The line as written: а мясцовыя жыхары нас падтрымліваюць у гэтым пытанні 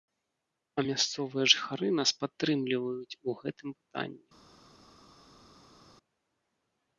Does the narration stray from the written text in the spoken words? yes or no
no